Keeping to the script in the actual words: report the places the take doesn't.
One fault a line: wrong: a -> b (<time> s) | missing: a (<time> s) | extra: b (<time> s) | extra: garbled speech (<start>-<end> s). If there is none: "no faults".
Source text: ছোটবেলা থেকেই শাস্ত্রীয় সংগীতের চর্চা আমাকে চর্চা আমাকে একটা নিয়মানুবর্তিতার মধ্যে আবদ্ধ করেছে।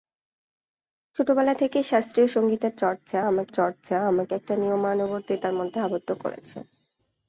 no faults